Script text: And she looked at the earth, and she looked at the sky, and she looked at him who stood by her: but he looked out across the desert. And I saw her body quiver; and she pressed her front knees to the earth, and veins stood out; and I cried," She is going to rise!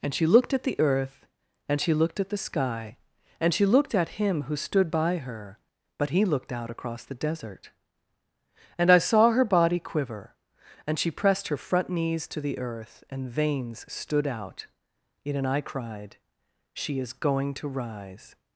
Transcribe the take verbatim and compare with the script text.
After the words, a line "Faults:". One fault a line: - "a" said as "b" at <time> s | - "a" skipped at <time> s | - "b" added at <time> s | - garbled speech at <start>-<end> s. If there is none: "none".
And she looked at the earth, and she looked at the sky, and she looked at him who stood by her: but he looked out across the desert. And I saw her body quiver; and she pressed her front knees to the earth, and veins stood out; yet and I cried," She is going to rise!
Faults:
- "yet" added at 15.2 s